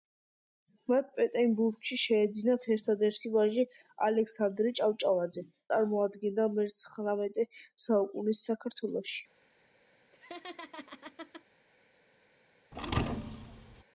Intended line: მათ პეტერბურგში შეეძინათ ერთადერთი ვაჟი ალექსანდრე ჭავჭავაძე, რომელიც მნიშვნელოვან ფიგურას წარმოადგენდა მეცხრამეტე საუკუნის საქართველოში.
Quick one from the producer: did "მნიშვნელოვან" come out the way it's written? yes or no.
no